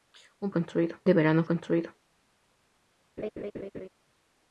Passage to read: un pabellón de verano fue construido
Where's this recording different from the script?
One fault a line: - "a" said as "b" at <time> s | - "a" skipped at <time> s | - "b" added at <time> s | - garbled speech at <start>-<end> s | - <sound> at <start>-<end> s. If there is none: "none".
- "pabellón" said as "construido" at 0.5 s
- "fue" skipped at 1.4 s
- laugh at 3.2-3.9 s